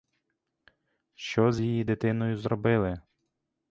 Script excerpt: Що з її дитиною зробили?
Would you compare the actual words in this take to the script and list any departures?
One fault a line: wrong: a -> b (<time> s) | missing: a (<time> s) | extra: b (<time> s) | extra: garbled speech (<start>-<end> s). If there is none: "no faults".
no faults